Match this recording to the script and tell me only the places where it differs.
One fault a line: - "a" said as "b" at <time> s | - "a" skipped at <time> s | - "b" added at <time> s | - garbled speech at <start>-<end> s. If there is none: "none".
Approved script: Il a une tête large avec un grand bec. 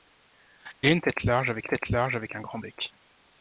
- "tête large avec" added at 1.7 s